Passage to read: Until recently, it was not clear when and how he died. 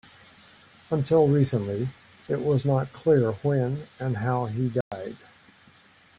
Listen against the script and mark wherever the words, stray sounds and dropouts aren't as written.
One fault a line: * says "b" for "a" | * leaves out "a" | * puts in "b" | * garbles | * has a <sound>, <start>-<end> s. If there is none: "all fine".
* has a dropout, 4.8-4.9 s